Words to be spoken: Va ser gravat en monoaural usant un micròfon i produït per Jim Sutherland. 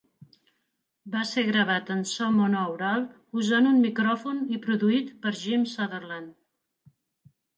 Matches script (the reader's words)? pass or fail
fail